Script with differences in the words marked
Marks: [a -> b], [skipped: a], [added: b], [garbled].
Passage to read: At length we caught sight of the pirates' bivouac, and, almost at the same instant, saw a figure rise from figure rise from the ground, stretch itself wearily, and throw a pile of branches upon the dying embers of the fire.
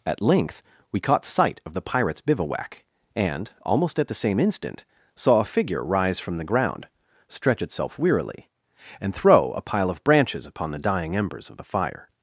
At length we caught sight of the pirates' bivouac, and, almost at the same instant, saw a figure rise from [skipped: figure rise from] the ground, stretch itself wearily, and throw a pile of branches upon the dying embers of the fire.